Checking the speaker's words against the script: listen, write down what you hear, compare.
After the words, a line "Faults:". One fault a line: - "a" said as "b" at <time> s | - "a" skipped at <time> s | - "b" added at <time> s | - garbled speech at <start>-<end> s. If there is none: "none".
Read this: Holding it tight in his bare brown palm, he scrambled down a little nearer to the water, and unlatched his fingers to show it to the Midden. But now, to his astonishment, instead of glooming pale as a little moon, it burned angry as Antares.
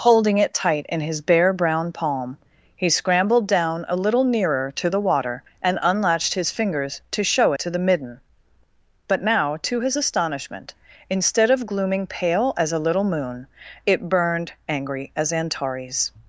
Holding it tight in his bare brown palm, he scrambled down a little nearer to the water, and unlatched his fingers to show to the Midden. But now, to his astonishment, instead of glooming pale as a little moon, it burned angry as Antares.
Faults:
- "it" skipped at 7.5 s